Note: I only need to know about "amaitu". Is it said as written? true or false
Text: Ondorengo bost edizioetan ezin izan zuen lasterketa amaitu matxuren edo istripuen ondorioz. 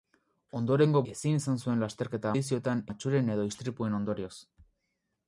false